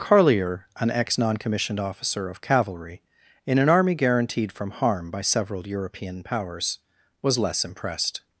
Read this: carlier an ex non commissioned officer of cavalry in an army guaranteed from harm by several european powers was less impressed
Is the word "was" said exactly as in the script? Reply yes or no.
yes